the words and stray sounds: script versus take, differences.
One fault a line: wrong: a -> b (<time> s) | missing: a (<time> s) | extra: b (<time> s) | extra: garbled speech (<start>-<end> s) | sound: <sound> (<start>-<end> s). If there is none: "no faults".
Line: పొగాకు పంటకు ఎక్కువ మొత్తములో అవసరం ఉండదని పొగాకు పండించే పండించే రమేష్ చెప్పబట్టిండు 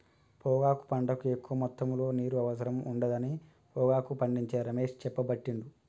extra: నీరు (2.1 s)
missing: పండించే (4.6 s)